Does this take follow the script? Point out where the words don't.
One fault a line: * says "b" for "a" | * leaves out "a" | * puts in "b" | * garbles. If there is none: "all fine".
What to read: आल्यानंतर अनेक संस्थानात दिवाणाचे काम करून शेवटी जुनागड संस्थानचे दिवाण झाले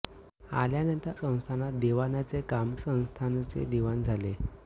* leaves out "अनेक"
* leaves out "करून शेवटी जुनागड"